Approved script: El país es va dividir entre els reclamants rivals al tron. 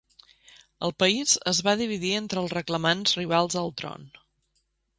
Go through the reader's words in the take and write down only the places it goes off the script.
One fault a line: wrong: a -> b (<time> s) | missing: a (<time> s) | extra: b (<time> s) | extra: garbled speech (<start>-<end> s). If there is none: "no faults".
no faults